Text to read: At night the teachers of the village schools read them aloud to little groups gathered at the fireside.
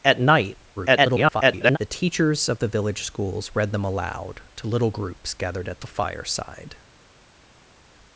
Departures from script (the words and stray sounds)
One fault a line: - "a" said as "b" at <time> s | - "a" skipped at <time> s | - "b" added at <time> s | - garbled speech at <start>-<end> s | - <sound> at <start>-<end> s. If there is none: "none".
- garbled speech at 0.8-1.8 s